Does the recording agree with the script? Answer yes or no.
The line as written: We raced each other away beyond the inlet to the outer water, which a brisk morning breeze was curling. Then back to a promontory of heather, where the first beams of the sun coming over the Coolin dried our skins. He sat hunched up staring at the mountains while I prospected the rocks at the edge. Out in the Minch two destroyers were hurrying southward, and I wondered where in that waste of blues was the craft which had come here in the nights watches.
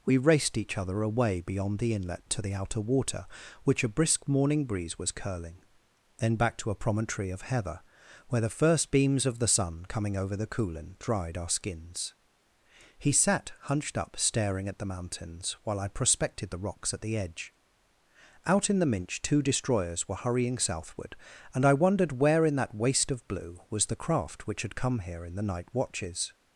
no